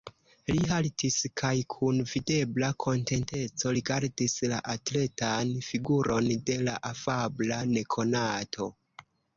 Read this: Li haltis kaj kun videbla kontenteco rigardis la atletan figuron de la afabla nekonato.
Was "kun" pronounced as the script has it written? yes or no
yes